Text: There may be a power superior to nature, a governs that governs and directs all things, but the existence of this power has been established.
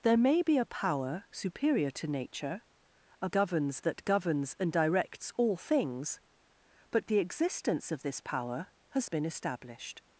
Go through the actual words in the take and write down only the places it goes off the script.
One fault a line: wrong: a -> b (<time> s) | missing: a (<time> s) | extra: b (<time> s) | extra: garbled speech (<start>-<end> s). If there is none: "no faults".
no faults